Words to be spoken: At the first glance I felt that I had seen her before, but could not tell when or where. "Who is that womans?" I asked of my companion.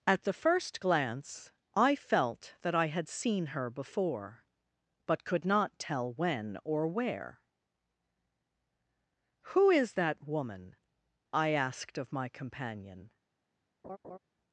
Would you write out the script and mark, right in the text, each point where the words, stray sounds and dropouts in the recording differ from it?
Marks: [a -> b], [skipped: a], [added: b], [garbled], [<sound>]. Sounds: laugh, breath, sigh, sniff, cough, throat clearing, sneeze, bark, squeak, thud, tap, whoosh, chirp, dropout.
At the first glance I felt that I had seen her before, but could not tell when or where. "Who is that [womans?" -> woman] I asked of my companion. [laugh]